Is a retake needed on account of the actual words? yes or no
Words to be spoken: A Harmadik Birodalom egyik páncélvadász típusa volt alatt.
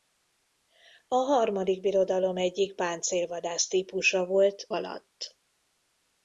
no